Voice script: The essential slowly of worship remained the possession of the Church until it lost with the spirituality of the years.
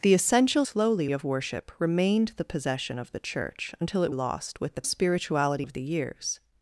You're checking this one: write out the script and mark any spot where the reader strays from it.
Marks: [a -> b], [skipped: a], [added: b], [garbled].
The essential slowly of worship remained the possession of the Church until it lost with the spirituality of the years.